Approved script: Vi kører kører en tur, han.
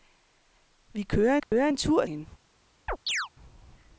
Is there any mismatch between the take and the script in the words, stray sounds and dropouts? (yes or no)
yes